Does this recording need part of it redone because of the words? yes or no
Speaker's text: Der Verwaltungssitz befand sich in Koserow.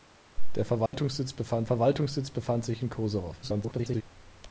yes